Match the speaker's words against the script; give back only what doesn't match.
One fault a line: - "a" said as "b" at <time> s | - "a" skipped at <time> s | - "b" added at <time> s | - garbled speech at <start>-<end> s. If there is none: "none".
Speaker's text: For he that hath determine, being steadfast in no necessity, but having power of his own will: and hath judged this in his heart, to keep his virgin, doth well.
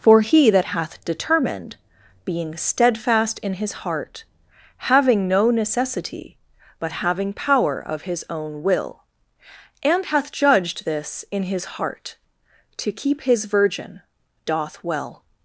- "determine" said as "determined" at 1.0 s
- "his heart having" added at 3.5 s